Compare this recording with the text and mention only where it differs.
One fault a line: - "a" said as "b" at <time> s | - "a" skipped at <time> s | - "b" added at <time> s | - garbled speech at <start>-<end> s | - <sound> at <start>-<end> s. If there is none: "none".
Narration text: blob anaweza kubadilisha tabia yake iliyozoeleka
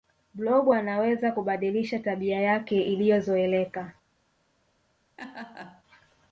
- laugh at 5.2-5.8 s